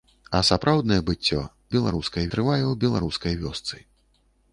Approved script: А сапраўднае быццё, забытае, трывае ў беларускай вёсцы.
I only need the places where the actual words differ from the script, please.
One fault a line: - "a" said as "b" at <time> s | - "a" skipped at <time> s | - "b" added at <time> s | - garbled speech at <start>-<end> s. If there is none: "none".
- "забытае" said as "беларускай" at 1.8 s